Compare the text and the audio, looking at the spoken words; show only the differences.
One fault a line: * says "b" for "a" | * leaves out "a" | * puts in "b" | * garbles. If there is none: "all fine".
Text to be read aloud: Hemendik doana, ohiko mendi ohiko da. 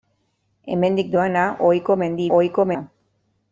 all fine